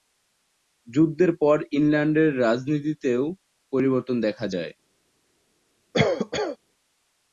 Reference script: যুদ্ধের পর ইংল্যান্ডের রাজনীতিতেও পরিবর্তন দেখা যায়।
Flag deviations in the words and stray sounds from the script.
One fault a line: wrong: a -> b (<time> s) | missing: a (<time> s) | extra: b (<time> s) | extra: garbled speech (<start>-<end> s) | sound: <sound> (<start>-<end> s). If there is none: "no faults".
sound: cough (5.9-6.6 s)